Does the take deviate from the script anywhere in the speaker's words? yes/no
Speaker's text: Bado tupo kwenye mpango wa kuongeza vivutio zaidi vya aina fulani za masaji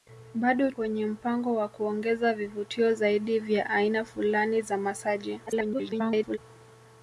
yes